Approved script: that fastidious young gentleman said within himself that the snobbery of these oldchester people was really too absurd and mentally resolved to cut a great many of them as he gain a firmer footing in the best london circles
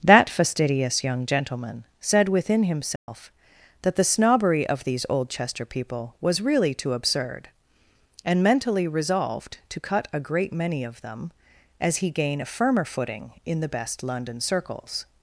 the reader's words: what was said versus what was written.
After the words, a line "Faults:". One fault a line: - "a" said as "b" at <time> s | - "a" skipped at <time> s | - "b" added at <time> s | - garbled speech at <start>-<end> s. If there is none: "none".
that fastidious young gentleman said within himself that the snobbery of these oldchester people was really too absurd and mentally resolved to cut a great many of them as he gain a firmer footing in the best london circles
Faults:
none